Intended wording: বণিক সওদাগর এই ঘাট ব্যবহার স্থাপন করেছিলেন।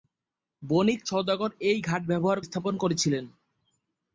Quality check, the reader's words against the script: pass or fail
pass